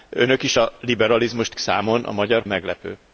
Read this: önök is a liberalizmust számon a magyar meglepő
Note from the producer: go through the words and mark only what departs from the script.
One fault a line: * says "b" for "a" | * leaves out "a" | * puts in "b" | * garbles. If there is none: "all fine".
all fine